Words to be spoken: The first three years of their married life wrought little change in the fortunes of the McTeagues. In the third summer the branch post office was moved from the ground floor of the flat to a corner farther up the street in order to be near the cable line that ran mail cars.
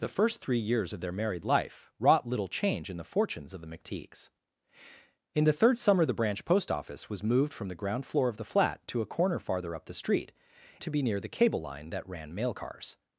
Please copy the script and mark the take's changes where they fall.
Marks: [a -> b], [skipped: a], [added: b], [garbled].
The first three years of their married life wrought little change in the fortunes of the McTeagues. In the third summer the branch post office was moved from the ground floor of the flat to a corner farther up the street [skipped: in order] to be near the cable line that ran mail cars.